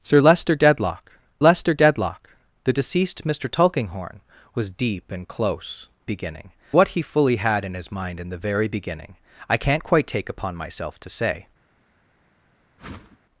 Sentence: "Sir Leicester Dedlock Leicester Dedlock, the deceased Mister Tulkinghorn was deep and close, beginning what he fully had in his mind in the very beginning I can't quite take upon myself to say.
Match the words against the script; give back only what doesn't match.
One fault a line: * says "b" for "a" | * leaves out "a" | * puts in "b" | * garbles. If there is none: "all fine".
all fine